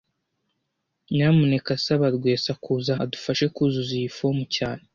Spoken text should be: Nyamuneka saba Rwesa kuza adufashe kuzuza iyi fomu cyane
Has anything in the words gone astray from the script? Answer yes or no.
no